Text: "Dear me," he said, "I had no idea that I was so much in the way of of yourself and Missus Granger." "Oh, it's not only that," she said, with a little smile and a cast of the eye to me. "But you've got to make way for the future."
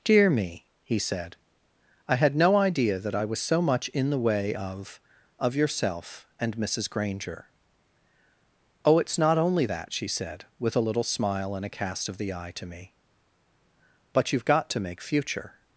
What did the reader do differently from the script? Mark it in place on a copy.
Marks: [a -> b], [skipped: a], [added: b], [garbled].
"Dear me," he said, "I had no idea that I was so much in the way of of yourself and Missus Granger." "Oh, it's not only that," she said, with a little smile and a cast of the eye to me. "But you've got to make [skipped: way for the] future."